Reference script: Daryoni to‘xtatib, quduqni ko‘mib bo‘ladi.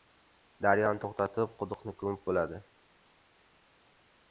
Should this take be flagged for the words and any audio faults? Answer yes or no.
no